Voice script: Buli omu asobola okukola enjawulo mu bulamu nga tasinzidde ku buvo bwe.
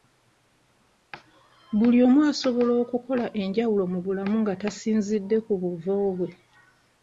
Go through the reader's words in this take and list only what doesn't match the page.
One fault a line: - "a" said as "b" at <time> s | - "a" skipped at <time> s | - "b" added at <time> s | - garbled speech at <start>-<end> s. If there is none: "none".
none